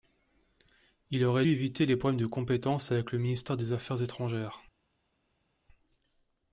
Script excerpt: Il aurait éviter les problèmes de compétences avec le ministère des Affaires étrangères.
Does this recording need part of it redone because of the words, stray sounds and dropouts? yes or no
no